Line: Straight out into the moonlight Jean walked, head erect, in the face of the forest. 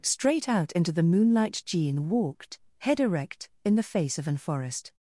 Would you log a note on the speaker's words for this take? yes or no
yes